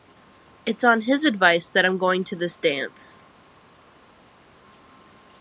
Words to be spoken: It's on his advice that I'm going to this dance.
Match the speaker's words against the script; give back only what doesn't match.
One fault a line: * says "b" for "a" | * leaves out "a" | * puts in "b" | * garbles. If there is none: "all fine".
all fine